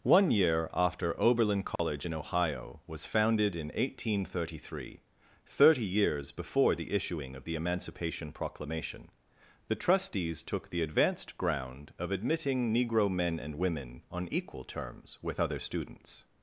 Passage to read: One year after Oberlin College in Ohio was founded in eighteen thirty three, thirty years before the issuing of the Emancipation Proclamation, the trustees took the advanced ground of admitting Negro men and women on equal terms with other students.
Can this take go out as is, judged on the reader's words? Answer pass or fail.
pass